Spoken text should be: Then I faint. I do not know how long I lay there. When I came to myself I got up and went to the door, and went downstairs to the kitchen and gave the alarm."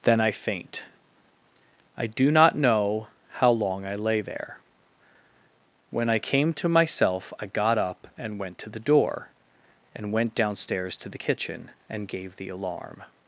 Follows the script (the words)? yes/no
yes